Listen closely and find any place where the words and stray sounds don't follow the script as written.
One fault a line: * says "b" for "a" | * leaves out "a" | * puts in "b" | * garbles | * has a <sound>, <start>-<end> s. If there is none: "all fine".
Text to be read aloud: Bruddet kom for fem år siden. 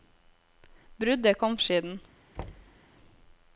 * leaves out "for fem år"
* has a thud, 2.4-2.8 s